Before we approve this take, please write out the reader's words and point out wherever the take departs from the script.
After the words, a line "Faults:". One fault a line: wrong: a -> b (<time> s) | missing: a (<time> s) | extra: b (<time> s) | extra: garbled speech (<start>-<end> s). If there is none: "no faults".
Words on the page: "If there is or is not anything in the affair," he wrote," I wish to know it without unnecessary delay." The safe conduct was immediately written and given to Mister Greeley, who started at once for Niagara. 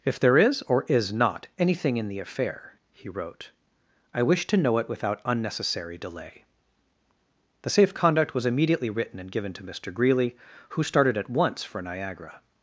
"If there is or is not anything in the affair," he wrote," I wish to know it without unnecessary delay." The safe conduct was immediately written and given to Mister Greeley, who started at once for Niagara.
Faults:
no faults